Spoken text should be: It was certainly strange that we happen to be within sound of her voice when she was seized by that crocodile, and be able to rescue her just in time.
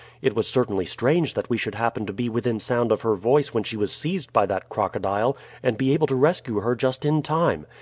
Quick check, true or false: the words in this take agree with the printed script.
false